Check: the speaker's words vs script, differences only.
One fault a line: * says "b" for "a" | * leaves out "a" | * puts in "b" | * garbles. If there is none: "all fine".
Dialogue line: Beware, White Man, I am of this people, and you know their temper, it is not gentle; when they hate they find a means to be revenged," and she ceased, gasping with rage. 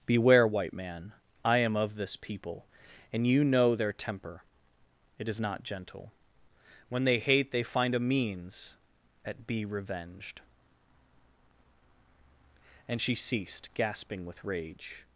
* says "at" for "to"